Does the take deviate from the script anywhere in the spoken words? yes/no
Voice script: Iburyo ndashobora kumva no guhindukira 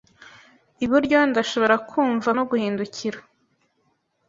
no